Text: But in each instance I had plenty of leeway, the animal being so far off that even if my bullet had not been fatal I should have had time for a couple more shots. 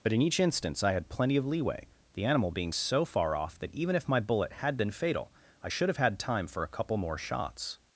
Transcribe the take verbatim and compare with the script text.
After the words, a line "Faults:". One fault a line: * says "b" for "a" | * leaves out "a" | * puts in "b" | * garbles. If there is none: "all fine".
But in each instance I had plenty of leeway, the animal being so far off that even if my bullet had been fatal I should have had time for a couple more shots.
Faults:
* leaves out "not"